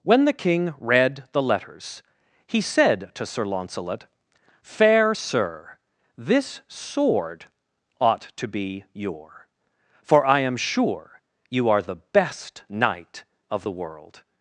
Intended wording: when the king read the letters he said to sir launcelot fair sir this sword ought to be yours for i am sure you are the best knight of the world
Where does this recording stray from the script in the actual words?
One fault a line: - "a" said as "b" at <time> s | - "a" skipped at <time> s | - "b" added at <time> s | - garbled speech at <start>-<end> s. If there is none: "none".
- "yours" said as "your" at 8.9 s